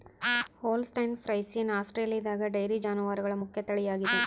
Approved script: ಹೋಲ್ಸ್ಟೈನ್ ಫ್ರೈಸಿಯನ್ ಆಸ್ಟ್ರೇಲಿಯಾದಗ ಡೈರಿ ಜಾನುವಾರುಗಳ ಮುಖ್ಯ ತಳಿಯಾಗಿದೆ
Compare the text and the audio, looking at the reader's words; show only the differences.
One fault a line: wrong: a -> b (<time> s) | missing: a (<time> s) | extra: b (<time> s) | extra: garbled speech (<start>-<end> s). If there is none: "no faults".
no faults